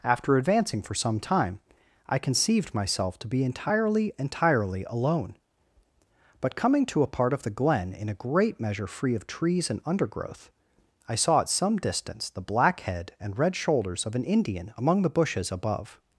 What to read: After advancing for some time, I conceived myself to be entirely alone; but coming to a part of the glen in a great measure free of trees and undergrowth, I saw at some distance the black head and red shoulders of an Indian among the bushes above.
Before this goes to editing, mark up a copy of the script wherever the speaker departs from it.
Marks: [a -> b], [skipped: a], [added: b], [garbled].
After advancing for some time, I conceived myself to be entirely [added: entirely] alone; but coming to a part of the glen in a great measure free of trees and undergrowth, I saw at some distance the black head and red shoulders of an Indian among the bushes above.